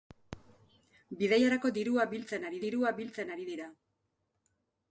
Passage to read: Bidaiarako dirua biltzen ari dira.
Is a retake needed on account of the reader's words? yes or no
yes